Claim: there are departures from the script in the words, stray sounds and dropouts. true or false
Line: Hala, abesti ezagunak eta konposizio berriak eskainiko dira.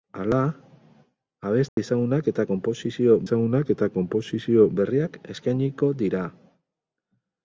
true